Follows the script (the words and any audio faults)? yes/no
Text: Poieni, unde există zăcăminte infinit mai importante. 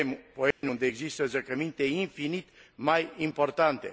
no